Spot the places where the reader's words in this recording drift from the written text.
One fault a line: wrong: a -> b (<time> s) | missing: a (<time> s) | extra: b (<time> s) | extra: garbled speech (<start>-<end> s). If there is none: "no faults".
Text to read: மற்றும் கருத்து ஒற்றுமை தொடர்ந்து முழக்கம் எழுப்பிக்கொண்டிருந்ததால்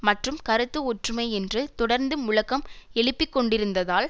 extra: என்று (1.3 s)